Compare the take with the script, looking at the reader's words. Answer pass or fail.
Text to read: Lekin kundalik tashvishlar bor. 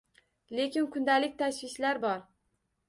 pass